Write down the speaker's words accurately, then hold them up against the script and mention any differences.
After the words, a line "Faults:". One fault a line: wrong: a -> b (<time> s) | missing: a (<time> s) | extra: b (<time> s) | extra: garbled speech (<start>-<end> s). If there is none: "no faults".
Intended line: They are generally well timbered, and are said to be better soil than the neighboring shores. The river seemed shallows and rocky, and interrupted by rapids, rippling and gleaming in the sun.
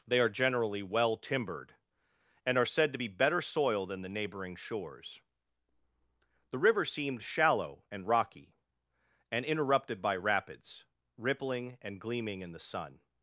They are generally well timbered, and are said to be better soil than the neighboring shores. The river seemed shallow and rocky, and interrupted by rapids, rippling and gleaming in the sun.
Faults:
wrong: shallows -> shallow (7.2 s)